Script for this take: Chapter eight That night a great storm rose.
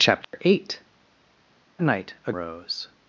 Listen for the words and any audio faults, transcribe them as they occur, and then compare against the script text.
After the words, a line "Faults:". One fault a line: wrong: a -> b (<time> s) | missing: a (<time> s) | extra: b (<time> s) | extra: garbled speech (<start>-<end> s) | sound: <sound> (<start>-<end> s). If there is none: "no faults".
Chapter eight Night a rose.
Faults:
sound: dropout (0.2-0.3 s)
missing: That (0.8 s)
missing: great storm (2.3 s)